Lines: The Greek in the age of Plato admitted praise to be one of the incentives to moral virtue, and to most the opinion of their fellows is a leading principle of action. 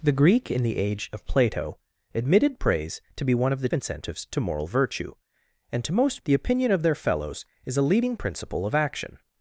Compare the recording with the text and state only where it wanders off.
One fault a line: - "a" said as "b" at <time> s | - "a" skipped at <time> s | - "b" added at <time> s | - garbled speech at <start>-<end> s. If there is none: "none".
none